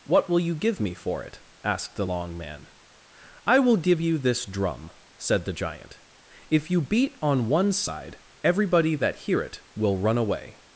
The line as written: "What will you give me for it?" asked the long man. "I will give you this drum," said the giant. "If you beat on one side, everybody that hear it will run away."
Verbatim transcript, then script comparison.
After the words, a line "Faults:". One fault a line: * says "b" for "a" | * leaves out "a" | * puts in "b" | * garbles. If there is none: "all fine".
"What will you give me for it?" asked the long man. "I will give you this drum," said the giant. "If you beat on one side, everybody that hear it will run away."
Faults:
all fine